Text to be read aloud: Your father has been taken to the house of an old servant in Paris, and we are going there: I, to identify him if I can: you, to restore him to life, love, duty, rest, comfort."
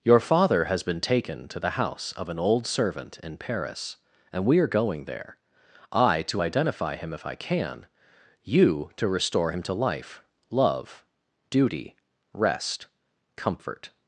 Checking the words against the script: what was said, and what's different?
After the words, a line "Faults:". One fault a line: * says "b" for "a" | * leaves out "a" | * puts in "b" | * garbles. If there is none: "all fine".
Your father has been taken to the house of an old servant in Paris, and we are going there: I, to identify him if I can: you, to restore him to life, love, duty, rest, comfort."
Faults:
all fine